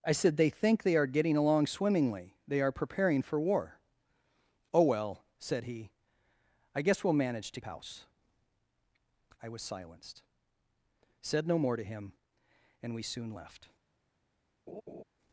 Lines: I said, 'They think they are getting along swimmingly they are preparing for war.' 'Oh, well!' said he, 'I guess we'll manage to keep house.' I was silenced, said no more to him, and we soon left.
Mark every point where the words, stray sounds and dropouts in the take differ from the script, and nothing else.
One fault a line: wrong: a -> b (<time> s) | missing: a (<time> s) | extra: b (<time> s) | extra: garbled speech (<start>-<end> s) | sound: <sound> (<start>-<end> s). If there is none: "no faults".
missing: keep (7.6 s)
sound: laugh (14.7-15.0 s)